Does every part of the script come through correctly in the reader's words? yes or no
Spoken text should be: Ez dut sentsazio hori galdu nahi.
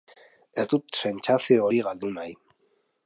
yes